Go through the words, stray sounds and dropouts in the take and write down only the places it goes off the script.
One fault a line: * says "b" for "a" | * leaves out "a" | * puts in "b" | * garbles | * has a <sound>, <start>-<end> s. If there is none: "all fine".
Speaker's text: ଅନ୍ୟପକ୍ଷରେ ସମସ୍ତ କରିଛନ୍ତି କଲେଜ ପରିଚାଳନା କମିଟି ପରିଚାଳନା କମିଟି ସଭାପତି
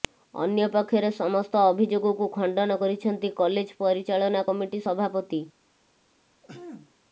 * puts in "ଅଭିଯୋଗକୁ ଖଣ୍ଡନ"
* leaves out "ପରିଚାଳନା କମିଟି"
* has a throat clearing, 6.4-6.9 s